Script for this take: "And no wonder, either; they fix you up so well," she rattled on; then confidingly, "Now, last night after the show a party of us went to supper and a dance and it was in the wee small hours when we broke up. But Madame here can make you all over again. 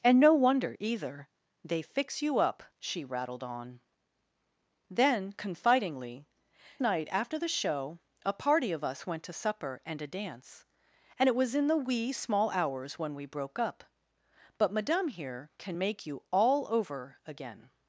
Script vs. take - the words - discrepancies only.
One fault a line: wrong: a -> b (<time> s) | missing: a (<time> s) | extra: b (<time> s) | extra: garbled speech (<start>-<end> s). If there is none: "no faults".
missing: so well (2.6 s)
missing: Now last (6.2 s)